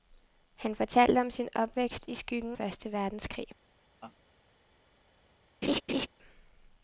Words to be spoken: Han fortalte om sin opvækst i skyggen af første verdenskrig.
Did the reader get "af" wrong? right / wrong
wrong